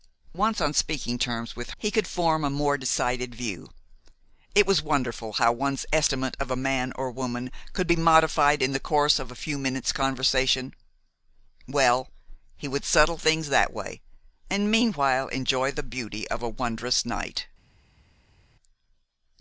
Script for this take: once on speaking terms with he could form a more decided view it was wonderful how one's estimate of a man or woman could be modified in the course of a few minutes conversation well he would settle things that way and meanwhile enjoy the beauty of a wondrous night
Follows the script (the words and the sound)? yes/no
yes